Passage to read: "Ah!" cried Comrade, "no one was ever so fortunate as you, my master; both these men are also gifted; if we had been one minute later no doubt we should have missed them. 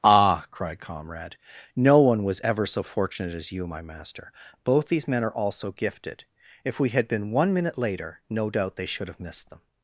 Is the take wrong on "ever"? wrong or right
right